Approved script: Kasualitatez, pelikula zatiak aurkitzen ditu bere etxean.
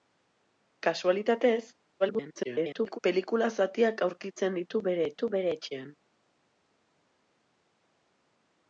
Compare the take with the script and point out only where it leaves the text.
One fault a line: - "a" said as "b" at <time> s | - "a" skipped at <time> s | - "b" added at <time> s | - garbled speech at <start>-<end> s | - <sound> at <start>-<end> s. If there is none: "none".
- garbled speech at 2.0-3.0 s
- "ditu bere" added at 5.1 s